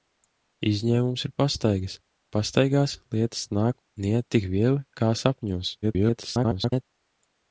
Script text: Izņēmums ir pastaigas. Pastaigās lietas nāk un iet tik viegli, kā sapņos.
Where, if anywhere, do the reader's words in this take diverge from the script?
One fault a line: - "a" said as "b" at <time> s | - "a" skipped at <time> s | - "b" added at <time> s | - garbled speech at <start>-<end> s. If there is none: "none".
- garbled speech at 5.8-6.8 s